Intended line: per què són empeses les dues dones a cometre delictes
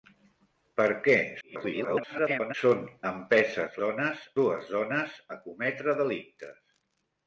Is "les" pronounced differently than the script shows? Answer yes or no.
yes